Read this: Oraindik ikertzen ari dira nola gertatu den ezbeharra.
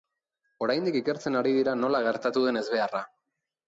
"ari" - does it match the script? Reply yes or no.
yes